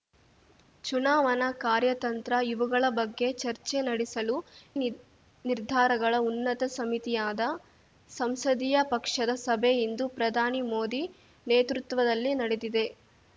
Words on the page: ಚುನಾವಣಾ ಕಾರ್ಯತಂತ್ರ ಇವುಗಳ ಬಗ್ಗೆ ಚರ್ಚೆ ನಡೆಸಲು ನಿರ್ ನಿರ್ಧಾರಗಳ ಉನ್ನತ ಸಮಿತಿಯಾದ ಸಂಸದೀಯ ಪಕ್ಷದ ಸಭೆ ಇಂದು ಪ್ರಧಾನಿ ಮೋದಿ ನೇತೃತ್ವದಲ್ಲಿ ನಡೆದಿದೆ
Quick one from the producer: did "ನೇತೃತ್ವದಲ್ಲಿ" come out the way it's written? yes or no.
yes